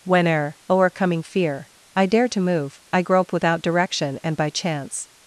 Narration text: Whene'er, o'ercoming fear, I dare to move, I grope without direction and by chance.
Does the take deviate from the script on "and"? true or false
false